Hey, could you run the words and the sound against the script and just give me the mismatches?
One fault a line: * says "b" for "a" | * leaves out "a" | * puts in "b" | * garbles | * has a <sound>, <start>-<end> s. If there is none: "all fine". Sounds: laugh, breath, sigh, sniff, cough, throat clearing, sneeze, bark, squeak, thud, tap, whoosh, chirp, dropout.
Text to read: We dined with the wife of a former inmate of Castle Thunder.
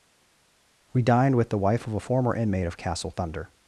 all fine